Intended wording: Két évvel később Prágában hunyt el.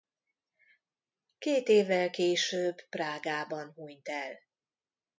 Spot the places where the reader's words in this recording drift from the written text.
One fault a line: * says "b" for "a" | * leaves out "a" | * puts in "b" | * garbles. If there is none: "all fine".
all fine